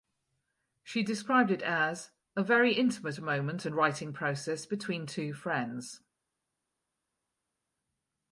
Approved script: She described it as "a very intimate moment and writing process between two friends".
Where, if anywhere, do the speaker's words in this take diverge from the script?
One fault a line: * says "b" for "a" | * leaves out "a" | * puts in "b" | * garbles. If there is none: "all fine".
all fine